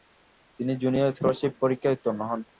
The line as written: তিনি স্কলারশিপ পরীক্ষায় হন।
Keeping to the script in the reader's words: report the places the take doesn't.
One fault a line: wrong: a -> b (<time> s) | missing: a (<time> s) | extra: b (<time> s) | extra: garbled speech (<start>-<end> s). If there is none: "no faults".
extra: জুনিয়র (0.8 s)
extra: উত্তীর্ণ (1.9 s)